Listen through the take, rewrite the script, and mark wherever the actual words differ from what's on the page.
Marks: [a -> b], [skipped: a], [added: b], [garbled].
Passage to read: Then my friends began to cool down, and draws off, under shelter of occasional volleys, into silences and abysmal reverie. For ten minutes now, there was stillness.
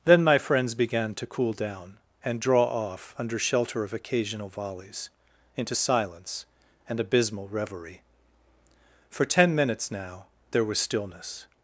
Then my friends began to cool down, and [draws -> draw] off, under shelter of occasional volleys, into [silences -> silence] and abysmal reverie. For ten minutes now, there was stillness.